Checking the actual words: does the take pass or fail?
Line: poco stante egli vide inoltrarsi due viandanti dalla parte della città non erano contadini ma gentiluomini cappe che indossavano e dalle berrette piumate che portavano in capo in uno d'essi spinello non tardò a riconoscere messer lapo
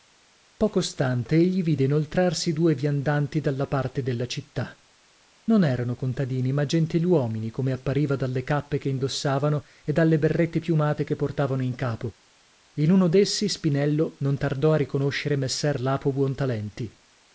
fail